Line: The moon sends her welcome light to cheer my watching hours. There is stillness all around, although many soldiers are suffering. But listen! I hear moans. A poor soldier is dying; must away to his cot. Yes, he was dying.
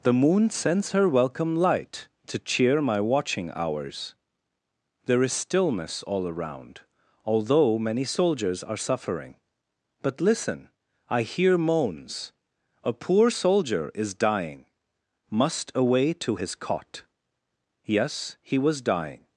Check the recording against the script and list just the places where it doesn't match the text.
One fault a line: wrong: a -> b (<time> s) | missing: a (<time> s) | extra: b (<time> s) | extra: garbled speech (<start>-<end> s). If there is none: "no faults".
no faults